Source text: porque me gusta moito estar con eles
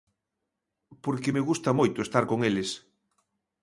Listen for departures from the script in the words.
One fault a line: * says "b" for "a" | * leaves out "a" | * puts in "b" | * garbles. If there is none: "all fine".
all fine